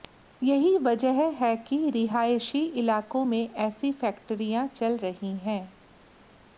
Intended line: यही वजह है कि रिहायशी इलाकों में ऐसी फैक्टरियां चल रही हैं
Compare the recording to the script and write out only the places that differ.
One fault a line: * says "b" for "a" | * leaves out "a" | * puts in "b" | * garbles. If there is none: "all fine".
all fine